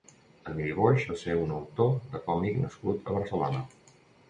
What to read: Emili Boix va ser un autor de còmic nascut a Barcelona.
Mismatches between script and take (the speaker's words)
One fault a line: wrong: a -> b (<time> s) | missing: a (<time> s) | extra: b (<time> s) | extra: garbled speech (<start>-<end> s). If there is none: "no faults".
no faults